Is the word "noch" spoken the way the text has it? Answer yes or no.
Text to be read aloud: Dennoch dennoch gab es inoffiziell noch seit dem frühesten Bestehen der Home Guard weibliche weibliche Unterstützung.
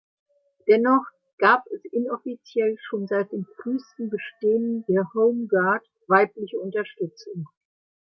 no